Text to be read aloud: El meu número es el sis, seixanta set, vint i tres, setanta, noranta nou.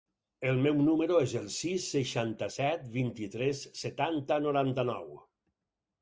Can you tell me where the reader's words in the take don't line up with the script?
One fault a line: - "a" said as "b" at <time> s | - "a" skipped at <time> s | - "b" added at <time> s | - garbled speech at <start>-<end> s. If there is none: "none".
none